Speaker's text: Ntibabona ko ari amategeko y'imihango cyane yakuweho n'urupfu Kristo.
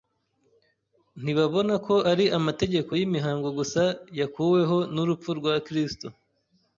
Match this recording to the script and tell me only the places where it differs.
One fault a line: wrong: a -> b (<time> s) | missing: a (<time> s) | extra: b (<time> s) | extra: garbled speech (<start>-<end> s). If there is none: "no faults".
wrong: cyane -> gusa (3.6 s)
extra: rwa (5.4 s)